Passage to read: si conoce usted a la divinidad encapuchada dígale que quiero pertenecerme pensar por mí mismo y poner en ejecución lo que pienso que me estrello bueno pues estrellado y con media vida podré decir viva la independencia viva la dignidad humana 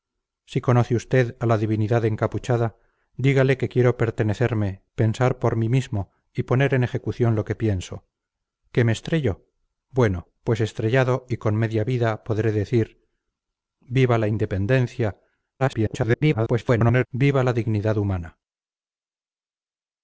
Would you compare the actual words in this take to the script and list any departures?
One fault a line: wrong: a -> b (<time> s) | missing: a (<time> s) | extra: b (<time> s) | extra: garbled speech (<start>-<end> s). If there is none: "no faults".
extra: garbled speech (15.6-17.1 s)